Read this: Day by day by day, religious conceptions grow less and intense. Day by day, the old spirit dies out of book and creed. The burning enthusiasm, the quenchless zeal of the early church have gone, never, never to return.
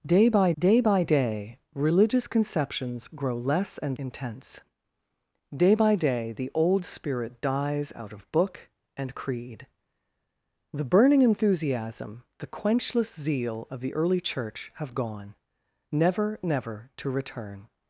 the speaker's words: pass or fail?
pass